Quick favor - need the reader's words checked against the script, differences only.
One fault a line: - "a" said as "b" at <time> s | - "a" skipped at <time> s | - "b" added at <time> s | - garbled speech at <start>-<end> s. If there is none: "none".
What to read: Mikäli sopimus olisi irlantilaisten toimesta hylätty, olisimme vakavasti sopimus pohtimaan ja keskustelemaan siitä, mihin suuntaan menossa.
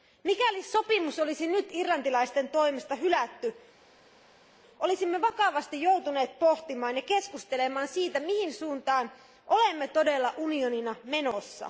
- "nyt" added at 1.5 s
- "sopimus" said as "joutuneet" at 5.8 s
- "olemme todella unionina" added at 9.5 s